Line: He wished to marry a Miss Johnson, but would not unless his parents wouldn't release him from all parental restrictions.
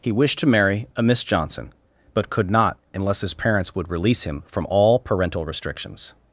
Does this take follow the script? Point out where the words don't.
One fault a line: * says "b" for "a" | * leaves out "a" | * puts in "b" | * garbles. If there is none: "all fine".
* says "could" for "would"
* says "would" for "wouldn't"